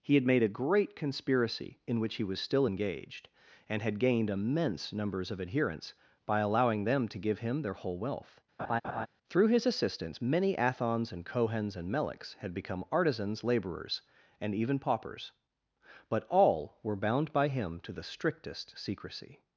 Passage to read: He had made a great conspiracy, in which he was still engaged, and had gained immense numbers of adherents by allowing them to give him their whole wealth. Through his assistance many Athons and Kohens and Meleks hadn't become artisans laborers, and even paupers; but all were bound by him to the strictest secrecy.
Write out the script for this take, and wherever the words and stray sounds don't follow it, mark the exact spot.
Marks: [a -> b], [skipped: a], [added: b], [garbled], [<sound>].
He had made a great conspiracy, in which he was still engaged, and had gained immense numbers of adherents by allowing them to give him their whole wealth. [laugh] Through his assistance many Athons and Kohens and Meleks [hadn't -> had] become artisans laborers, and even paupers; but all were bound by him to the strictest secrecy.